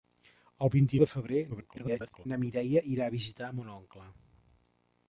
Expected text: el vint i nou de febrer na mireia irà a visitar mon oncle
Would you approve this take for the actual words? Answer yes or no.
no